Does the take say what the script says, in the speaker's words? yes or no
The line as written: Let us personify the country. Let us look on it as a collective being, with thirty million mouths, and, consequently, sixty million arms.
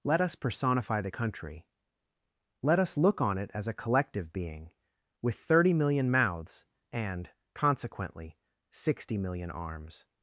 yes